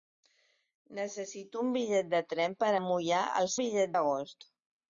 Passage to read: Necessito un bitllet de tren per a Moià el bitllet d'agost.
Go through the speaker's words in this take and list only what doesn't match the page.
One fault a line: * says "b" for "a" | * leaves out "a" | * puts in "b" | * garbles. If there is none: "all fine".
all fine